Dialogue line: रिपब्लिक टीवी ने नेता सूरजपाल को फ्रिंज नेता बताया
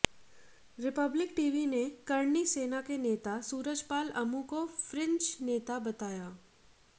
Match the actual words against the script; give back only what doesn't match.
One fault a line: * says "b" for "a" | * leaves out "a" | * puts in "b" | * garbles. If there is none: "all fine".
* puts in "करणी सेना के"
* puts in "अमू"